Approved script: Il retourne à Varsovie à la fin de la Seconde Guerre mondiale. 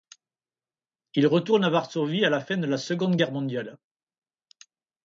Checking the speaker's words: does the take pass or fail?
pass